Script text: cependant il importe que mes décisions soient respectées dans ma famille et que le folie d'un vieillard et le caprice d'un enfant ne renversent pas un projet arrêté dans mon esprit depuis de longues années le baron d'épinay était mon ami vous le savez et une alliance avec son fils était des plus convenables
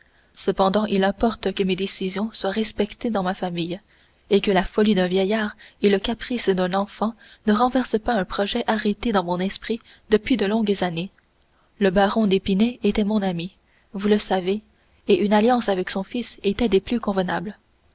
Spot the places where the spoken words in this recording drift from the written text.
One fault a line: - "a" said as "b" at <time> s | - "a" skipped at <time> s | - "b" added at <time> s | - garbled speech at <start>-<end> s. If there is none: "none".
- "le" said as "la" at 4.5 s